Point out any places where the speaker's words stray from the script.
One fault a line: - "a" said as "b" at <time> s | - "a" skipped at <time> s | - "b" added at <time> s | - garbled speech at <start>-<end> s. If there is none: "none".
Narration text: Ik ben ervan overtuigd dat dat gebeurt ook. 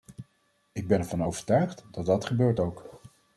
none